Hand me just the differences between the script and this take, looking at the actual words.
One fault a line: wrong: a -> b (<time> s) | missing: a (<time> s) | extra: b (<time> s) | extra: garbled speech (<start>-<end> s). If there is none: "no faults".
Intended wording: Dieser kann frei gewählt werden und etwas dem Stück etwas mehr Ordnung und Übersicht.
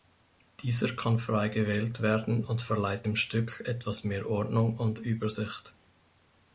wrong: etwas -> verleiht (2.6 s)